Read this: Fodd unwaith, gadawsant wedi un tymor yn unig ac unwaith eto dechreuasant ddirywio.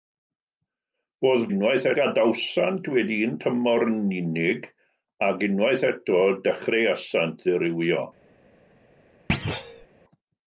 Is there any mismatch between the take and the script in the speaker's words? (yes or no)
no